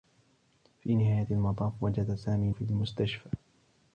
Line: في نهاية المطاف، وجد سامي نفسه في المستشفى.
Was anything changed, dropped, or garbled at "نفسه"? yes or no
yes